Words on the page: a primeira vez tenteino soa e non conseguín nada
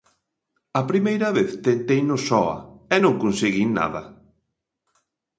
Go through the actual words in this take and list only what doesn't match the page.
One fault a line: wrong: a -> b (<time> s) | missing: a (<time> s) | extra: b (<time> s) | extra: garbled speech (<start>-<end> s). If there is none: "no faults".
no faults